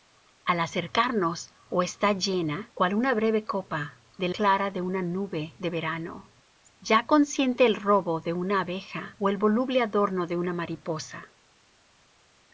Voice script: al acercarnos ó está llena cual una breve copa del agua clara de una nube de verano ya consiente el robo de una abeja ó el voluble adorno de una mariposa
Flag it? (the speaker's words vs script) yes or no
yes